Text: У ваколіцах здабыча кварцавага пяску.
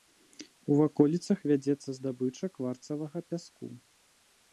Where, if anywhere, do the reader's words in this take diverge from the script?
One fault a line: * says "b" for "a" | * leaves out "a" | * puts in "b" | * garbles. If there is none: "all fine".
* puts in "вядзецца"